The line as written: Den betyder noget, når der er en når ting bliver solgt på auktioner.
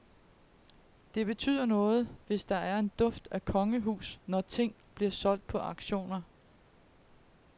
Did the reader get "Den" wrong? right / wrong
wrong